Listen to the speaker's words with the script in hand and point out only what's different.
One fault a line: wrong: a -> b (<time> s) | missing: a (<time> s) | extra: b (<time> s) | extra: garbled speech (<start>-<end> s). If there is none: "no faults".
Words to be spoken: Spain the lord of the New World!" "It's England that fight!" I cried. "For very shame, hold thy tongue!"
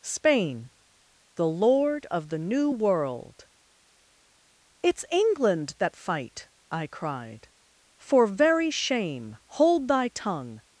no faults